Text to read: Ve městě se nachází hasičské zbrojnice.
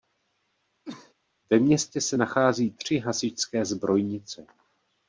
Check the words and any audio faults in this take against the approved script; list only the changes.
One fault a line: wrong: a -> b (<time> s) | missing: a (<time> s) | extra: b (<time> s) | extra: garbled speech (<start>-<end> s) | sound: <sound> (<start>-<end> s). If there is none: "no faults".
sound: cough (0.8-1.1 s)
extra: tři (2.7 s)